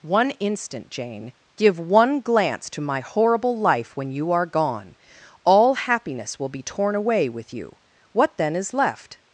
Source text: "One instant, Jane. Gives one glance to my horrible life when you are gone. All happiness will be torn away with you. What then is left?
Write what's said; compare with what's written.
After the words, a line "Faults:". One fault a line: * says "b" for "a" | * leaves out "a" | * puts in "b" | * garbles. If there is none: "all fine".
"One instant, Jane. Give one glance to my horrible life when you are gone. All happiness will be torn away with you. What then is left?
Faults:
* says "Give" for "Gives"